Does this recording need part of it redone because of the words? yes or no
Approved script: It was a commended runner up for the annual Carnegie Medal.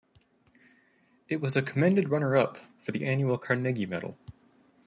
no